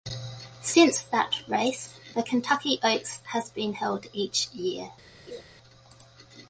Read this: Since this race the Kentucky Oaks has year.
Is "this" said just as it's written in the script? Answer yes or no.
no